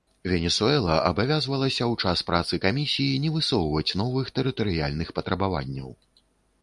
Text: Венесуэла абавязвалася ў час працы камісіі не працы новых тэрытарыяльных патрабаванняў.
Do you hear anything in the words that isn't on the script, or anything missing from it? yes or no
yes